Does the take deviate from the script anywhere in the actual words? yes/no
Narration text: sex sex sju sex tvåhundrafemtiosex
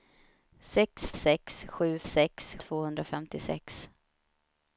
no